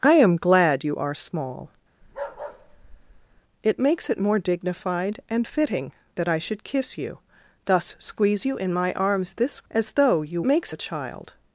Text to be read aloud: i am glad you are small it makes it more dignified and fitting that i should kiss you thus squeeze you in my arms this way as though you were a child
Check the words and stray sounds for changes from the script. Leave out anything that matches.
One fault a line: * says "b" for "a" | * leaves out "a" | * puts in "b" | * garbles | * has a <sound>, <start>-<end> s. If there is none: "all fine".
* has a bark, 2.0-3.4 s
* leaves out "way"
* says "makes" for "were"